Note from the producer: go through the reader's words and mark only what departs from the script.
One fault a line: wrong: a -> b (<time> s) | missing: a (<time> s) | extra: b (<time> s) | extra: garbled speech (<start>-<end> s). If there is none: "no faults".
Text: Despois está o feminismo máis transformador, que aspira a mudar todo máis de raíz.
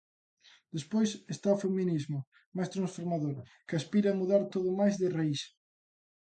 no faults